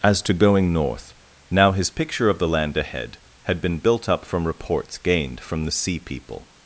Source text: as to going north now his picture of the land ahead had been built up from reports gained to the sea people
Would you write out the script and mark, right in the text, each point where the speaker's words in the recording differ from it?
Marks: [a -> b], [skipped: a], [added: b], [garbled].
as to going north now his picture of the land ahead had been built up from reports gained [to -> from] the sea people